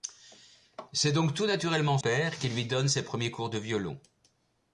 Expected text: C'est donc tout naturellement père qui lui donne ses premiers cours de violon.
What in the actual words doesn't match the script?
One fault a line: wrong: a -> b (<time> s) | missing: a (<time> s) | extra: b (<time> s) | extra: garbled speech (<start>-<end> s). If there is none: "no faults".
no faults